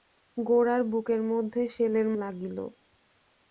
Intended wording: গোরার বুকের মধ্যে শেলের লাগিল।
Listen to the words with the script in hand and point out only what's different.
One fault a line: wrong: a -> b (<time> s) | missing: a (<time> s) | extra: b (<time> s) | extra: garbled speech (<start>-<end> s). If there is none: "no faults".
no faults